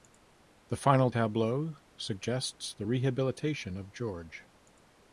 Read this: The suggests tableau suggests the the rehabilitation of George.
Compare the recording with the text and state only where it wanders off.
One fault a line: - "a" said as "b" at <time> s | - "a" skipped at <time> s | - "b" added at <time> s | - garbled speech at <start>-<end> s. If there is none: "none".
- "suggests" said as "final" at 0.8 s
- "the" skipped at 2.9 s